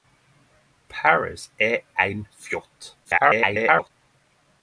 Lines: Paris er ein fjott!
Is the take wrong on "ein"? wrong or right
right